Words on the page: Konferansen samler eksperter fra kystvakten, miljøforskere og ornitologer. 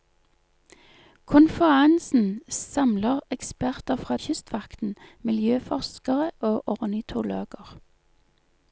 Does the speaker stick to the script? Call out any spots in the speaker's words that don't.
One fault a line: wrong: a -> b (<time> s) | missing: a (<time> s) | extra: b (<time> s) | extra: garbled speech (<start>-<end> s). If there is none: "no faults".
no faults